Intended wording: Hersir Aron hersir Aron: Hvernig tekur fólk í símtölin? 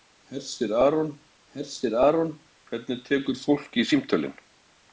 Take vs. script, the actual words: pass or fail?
pass